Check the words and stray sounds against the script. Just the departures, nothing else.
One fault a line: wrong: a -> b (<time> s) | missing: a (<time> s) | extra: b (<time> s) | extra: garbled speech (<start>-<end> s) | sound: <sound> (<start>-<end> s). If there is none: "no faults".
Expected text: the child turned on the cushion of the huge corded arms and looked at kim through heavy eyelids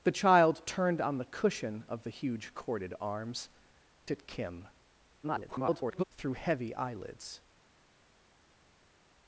missing: and looked (3.5 s)
extra: garbled speech (5.2-6.0 s)